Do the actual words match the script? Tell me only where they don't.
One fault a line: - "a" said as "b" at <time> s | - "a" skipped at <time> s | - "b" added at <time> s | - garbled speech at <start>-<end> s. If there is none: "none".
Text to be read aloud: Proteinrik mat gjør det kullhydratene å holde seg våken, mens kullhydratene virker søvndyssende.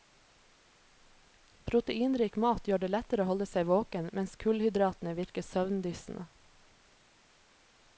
- "kullhydratene" said as "lettere" at 2.9 s